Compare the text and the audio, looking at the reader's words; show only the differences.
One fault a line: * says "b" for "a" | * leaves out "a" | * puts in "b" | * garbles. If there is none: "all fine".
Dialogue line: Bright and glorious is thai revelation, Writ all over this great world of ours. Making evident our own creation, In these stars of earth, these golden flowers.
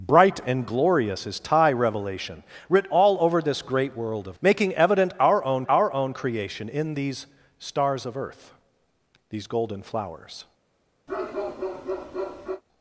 * leaves out "ours"
* puts in "our own"